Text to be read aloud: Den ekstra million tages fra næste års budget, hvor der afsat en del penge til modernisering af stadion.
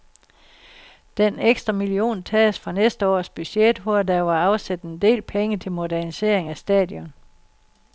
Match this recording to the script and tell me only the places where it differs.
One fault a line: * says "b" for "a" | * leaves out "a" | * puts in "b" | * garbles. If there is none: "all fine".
* puts in "var"